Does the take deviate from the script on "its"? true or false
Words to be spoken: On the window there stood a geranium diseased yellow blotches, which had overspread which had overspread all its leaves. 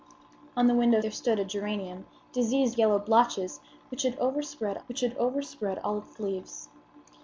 false